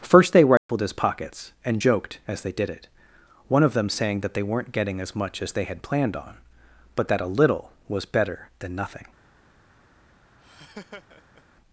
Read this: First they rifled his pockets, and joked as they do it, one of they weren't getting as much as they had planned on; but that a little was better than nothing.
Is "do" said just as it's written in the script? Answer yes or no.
no